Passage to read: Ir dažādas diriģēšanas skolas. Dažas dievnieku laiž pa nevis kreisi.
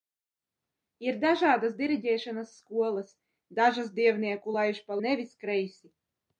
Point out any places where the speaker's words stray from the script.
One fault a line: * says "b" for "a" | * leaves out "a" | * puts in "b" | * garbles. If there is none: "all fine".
all fine